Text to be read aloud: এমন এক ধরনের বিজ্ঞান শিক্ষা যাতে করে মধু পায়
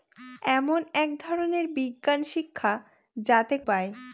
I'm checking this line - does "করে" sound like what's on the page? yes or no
no